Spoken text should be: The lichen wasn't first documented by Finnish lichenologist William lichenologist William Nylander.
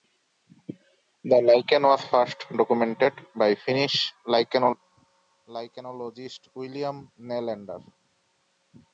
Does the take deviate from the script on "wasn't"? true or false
true